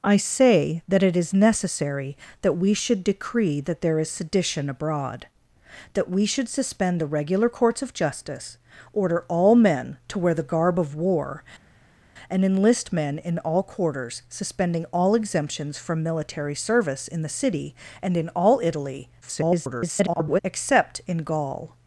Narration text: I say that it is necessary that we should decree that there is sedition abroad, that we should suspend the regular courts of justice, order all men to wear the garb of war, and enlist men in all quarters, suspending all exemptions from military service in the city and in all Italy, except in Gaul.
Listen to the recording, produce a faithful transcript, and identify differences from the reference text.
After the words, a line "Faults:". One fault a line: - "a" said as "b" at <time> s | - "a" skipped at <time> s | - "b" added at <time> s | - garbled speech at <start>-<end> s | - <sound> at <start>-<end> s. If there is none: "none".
I say that it is necessary that we should decree that there is sedition abroad, that we should suspend the regular courts of justice, order all men to wear the garb of war, and enlist men in all quarters, suspending all exemptions from military service in the city and in all Italy, [garbled] except in Gaul.
Faults:
- garbled speech at 19.2-20.4 s